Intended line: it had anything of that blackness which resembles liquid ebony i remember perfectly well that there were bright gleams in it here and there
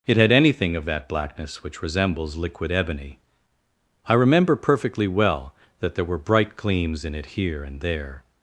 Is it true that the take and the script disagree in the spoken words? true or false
false